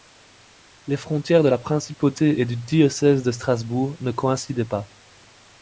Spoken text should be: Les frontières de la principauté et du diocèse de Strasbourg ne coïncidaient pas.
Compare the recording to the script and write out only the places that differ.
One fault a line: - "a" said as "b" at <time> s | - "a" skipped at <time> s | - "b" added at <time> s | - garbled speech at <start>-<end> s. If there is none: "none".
none